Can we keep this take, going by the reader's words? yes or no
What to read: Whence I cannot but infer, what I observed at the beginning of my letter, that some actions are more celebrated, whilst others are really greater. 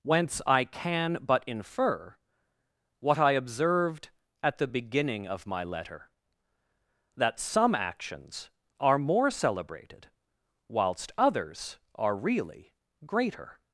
no